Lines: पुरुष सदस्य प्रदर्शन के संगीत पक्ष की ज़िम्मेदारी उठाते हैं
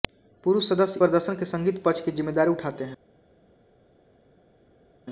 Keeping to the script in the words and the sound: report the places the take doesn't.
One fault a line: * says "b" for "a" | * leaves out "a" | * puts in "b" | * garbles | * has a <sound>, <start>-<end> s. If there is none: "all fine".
all fine